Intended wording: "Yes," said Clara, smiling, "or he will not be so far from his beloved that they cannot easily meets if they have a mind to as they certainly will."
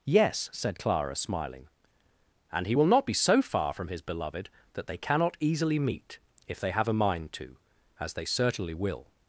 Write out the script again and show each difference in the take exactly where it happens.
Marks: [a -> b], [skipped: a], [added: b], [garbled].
"Yes," said Clara, smiling, ["or -> and] he will not be so far from his beloved that they cannot easily [meets -> meet] if they have a mind to as they certainly will."